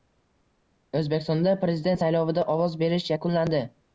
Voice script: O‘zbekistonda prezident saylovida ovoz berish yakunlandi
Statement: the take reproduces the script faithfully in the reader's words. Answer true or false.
true